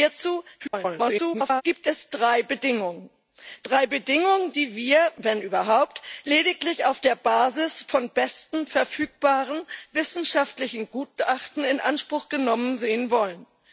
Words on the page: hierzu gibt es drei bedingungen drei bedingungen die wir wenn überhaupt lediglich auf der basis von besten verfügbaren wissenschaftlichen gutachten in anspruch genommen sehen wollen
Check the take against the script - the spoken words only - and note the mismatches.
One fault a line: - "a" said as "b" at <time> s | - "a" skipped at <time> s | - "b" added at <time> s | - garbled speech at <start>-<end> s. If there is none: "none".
- garbled speech at 0.6-1.6 s